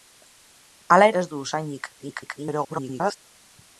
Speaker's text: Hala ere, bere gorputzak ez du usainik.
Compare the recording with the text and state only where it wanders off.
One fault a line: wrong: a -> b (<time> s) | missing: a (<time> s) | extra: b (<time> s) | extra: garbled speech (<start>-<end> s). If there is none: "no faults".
missing: ere bere gorputzak (1.1 s)
extra: garbled speech (2.0-3.2 s)